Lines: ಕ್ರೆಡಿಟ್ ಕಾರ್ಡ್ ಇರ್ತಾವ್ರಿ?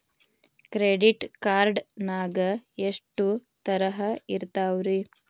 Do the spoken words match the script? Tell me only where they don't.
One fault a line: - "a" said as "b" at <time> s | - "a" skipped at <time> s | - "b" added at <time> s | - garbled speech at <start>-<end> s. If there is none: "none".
- "ನಾಗ ಎಷ್ಟು ತರಹ" added at 2.0 s